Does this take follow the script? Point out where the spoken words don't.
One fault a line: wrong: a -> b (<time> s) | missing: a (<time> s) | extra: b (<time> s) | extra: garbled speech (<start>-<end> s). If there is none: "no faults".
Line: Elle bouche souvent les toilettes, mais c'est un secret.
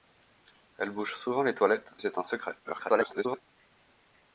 missing: mais (1.9 s)
extra: garbled speech (2.6-3.4 s)